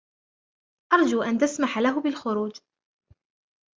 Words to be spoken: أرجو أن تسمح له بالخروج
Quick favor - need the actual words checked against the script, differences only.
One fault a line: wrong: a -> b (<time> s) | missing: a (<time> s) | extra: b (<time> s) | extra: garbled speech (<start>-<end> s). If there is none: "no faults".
no faults